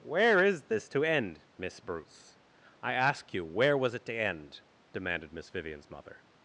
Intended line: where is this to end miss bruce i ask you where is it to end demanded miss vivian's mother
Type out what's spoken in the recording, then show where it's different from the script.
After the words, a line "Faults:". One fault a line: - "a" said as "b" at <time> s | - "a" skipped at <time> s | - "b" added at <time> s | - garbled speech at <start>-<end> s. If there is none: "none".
where is this to end miss bruce i ask you where was it to end demanded miss vivian's mother
Faults:
- "is" said as "was" at 3.8 s